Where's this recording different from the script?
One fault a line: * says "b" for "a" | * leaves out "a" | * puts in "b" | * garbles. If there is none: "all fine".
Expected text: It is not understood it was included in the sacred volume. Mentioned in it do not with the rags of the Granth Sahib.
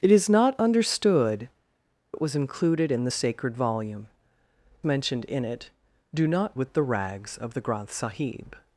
all fine